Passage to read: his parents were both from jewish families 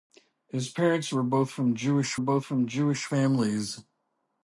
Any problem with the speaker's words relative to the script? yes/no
yes